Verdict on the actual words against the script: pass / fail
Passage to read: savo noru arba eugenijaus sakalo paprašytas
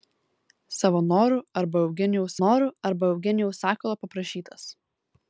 fail